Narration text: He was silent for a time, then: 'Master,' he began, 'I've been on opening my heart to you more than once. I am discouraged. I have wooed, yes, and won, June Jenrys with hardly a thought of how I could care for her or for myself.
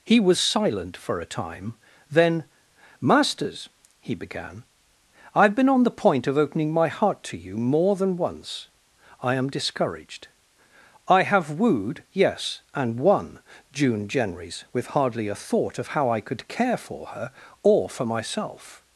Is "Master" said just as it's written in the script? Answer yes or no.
no